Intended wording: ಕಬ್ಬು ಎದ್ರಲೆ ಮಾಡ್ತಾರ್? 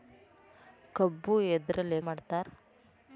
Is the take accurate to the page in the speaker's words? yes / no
yes